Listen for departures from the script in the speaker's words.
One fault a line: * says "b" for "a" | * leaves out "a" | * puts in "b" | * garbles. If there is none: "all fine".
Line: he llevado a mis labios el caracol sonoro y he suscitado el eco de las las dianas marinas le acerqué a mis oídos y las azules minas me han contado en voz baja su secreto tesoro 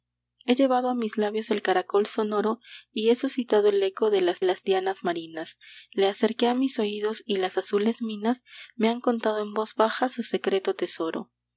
all fine